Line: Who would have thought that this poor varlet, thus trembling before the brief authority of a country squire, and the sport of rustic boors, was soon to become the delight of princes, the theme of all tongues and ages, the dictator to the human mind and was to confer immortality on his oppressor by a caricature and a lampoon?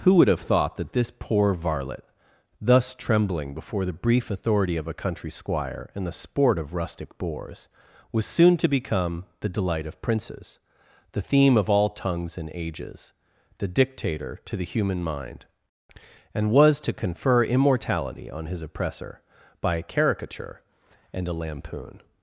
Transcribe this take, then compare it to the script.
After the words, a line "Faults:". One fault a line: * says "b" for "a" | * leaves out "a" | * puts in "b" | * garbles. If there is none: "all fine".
Who would have thought that this poor varlet, thus trembling before the brief authority of a country squire, and the sport of rustic boors, was soon to become the delight of princes, the theme of all tongues and ages, the dictator to the human mind and was to confer immortality on his oppressor by a caricature and a lampoon?
Faults:
all fine